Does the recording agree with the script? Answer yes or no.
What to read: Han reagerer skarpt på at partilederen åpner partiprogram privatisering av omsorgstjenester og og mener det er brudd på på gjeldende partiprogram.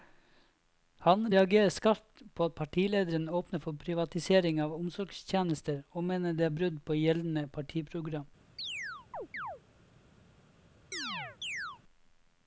no